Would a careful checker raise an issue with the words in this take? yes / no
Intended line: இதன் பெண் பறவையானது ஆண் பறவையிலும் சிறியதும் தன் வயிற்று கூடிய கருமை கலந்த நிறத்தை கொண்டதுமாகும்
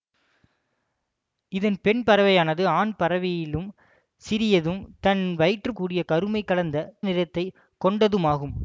no